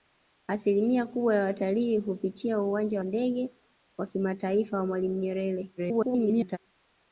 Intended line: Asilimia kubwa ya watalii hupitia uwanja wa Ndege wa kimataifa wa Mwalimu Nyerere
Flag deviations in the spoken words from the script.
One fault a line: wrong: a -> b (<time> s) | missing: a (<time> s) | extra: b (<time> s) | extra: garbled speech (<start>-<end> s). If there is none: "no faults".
missing: wa (3.0 s)
extra: garbled speech (5.8-6.6 s)